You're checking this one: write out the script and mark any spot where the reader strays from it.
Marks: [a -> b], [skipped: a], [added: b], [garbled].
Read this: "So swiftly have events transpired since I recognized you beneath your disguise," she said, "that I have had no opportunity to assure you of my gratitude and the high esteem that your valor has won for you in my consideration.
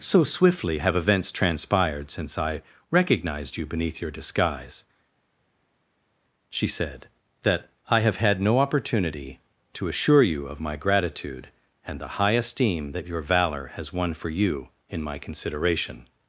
"So swiftly have events transpired since I recognized you beneath your disguise," she said, "that I have had no opportunity to assure you of my gratitude and the high esteem that your valor has won for you in my consideration.